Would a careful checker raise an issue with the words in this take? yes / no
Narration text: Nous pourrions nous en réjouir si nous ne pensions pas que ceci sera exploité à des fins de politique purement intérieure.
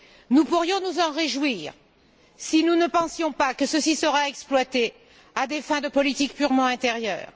no